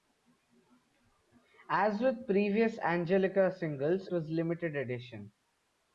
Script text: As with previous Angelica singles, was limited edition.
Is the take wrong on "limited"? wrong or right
right